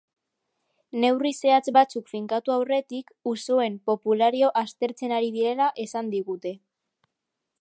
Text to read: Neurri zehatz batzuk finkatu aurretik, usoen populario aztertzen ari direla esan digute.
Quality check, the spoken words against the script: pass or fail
pass